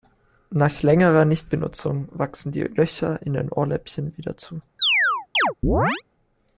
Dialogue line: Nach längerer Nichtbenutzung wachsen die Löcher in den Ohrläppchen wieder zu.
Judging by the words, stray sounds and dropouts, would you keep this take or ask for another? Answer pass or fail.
fail